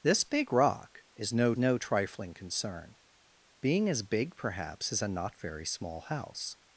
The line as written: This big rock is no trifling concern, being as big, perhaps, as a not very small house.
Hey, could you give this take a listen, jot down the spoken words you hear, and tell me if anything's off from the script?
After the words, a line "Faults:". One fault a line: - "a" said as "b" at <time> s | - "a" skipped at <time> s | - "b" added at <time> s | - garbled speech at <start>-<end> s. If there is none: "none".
This big rock is no no trifling concern, being as big, perhaps, as a not very small house.
Faults:
- "no" added at 1.6 s